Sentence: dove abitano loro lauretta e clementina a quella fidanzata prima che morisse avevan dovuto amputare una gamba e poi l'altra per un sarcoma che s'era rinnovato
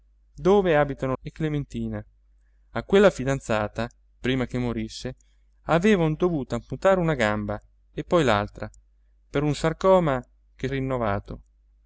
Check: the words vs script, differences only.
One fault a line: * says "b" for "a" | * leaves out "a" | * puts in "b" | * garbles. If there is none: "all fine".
* leaves out "loro lauretta"
* leaves out "s'era"